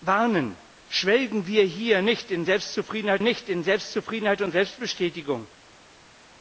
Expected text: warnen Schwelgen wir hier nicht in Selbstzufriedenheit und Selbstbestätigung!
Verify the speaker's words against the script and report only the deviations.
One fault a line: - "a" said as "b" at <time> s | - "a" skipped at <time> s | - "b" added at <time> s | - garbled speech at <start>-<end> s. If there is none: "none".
- "nicht in Selbstzufriedenheit" added at 3.2 s